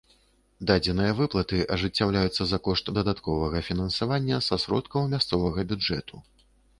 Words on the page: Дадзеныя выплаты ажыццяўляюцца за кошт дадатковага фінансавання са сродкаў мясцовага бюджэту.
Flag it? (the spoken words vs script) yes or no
no